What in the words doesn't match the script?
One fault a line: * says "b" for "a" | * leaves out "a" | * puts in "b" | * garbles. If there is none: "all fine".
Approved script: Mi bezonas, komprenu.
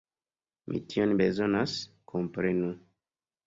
* puts in "tion"